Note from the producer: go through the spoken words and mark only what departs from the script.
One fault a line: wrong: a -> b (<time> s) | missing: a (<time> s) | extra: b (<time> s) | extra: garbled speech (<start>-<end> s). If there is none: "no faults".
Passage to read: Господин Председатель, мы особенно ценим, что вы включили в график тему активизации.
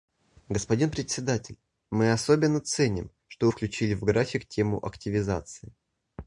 no faults